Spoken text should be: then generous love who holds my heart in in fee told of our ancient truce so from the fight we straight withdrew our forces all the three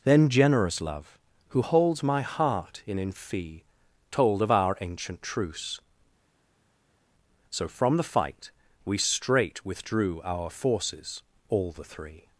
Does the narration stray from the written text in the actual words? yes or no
no